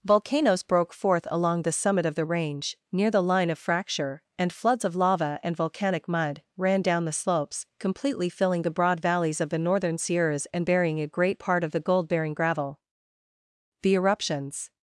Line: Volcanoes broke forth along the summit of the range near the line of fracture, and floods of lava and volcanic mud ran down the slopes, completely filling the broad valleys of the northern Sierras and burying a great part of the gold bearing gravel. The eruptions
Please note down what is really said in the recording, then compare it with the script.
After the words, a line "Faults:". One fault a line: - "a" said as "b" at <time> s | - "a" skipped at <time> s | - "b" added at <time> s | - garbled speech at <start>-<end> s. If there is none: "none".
Volcanoes broke forth along the summit of the range near the line of fracture, and floods of lava and volcanic mud ran down the slopes, completely filling the broad valleys of the northern Sierras and burying a great part of the gold bearing gravel. The eruptions
Faults:
none